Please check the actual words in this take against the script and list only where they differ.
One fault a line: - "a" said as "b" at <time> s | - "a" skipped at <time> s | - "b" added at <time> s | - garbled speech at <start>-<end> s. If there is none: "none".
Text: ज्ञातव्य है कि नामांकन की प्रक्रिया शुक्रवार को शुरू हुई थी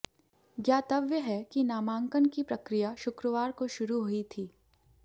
none